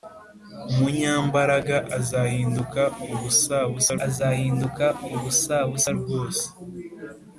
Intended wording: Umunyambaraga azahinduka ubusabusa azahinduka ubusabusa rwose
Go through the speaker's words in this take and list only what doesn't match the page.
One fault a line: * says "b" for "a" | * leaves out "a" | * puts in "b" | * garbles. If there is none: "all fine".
all fine